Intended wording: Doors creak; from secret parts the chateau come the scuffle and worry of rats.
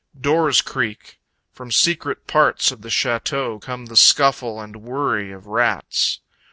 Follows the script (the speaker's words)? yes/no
no